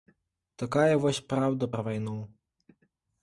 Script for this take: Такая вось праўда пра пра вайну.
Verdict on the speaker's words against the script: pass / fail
fail